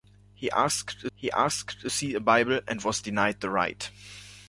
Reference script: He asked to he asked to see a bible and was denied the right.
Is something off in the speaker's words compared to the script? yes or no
no